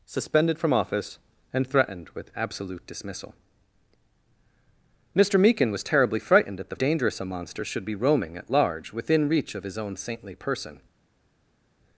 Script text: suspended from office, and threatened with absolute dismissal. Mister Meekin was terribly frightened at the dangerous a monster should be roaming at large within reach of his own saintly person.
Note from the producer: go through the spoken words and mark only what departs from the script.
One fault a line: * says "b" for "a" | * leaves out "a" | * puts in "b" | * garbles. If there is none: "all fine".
all fine